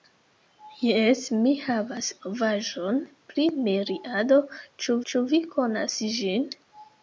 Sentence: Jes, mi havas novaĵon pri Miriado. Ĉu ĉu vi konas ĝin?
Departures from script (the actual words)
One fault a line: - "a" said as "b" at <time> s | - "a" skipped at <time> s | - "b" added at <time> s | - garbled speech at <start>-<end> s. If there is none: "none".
none